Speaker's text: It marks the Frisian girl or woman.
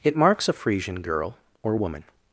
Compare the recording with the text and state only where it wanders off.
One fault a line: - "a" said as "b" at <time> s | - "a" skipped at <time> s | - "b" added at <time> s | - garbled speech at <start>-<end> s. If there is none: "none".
- "the" said as "a" at 0.5 s